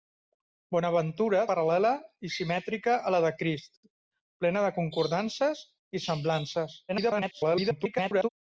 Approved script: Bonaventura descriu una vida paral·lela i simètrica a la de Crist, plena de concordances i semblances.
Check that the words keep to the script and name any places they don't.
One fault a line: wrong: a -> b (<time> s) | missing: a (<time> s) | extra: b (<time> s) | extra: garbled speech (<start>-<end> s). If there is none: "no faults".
missing: descriu una vida (1.4 s)
extra: garbled speech (6.9-8.3 s)